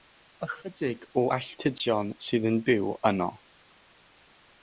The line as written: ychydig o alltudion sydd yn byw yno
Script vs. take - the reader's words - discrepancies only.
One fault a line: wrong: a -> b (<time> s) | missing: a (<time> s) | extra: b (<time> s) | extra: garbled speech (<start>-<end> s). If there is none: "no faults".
no faults